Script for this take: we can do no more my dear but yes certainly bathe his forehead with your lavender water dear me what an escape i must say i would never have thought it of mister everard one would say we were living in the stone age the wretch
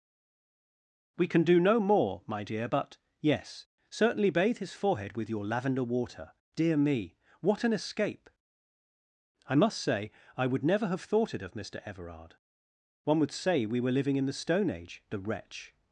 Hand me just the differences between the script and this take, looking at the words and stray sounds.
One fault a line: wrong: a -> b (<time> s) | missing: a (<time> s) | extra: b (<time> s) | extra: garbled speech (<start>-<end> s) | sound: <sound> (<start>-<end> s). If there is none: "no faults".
no faults